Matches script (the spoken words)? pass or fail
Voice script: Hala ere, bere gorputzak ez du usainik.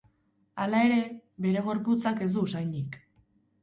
pass